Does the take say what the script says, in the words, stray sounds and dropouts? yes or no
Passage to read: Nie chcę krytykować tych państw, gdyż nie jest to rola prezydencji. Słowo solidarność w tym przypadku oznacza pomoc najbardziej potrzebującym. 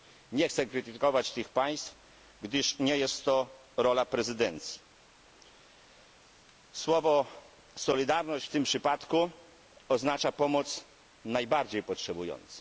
yes